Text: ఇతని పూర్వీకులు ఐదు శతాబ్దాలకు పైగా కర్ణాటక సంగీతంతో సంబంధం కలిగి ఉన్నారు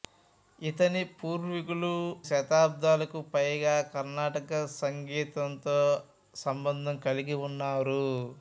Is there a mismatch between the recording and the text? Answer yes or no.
yes